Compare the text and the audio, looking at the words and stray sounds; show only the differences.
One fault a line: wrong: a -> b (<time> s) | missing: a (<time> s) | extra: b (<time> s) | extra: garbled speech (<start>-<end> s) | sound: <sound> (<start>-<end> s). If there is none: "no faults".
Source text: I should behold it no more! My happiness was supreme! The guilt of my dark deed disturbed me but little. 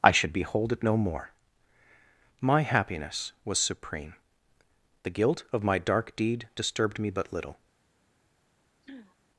sound: throat clearing (8.8-9.2 s)